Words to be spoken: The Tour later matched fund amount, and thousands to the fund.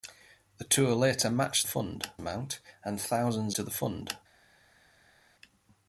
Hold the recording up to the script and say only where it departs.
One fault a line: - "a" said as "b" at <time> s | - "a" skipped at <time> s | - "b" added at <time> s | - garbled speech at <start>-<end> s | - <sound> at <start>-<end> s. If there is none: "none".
none